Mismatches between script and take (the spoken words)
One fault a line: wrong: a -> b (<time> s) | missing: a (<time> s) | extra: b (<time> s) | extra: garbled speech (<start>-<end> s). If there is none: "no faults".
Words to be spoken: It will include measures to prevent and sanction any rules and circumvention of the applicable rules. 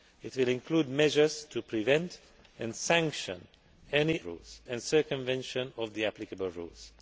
no faults